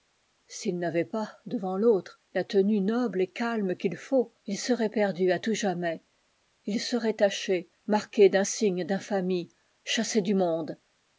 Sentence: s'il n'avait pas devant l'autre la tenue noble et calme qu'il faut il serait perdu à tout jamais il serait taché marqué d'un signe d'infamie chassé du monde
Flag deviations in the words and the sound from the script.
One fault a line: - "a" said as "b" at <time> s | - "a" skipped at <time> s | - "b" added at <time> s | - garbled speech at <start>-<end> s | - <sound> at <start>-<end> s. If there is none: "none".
none